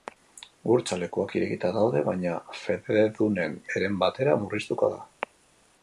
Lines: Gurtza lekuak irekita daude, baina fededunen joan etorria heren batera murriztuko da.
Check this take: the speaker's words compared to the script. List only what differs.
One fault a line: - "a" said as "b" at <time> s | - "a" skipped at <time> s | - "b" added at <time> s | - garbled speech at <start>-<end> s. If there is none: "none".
- "joan etorria" skipped at 3.6 s